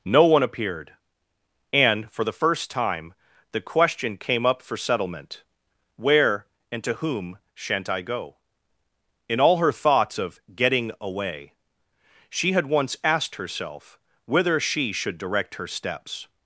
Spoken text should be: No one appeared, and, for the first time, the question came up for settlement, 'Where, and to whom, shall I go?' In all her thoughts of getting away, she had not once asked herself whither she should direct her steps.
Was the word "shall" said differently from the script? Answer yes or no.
yes